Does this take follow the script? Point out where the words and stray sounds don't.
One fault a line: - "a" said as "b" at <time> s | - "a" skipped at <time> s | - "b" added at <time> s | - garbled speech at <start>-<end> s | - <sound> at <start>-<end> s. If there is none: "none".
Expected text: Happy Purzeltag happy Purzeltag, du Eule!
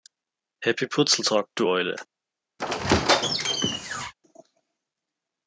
- "happy Purzeltag" skipped at 1.4 s
- squeak at 2.6-4.1 s